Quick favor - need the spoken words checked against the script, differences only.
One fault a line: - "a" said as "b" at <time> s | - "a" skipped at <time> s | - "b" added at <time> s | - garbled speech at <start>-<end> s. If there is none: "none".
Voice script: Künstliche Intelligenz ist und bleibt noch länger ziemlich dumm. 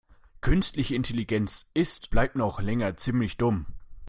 - "und" skipped at 2.1 s